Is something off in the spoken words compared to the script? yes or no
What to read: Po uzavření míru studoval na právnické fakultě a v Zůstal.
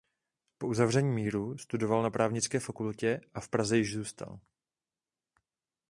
yes